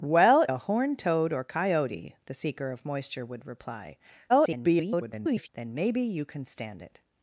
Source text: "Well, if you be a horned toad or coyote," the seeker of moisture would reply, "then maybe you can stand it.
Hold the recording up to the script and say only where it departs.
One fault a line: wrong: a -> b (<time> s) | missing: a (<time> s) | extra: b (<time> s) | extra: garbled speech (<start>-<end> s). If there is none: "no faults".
missing: if you be (0.5 s)
extra: garbled speech (4.3-5.5 s)